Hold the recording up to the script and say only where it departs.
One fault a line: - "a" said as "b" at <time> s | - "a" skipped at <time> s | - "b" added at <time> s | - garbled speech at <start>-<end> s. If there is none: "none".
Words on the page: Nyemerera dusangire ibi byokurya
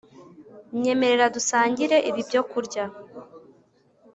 none